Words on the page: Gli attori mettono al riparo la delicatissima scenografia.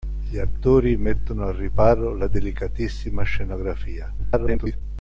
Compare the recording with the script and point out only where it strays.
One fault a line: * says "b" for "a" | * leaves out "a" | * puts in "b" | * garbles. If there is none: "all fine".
* garbles